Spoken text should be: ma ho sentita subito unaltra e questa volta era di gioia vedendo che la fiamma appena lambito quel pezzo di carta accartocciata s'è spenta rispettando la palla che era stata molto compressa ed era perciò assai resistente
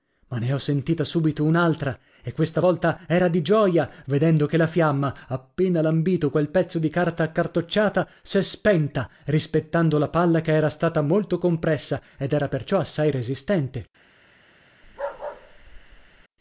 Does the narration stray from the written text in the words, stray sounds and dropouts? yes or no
yes